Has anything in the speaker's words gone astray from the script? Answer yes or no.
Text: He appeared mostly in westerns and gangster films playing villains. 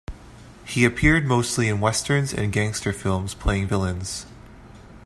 no